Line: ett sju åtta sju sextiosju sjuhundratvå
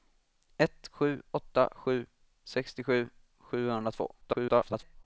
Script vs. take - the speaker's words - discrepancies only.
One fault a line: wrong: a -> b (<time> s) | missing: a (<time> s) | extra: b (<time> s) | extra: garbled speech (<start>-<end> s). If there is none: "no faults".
extra: garbled speech (4.2-5.0 s)